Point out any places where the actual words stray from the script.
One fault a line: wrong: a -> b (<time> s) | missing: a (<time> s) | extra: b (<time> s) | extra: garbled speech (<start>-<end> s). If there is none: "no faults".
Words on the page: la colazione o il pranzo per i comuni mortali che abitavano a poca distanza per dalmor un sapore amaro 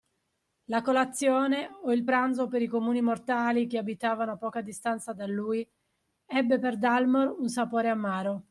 extra: da lui ebbe (5.1 s)